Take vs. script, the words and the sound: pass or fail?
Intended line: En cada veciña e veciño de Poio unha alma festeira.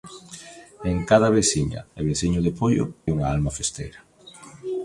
pass